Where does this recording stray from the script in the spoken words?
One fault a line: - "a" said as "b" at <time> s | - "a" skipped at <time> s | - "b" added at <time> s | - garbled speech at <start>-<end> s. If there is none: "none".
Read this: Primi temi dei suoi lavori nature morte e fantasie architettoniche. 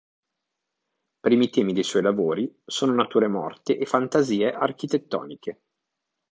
- "sono" added at 2.6 s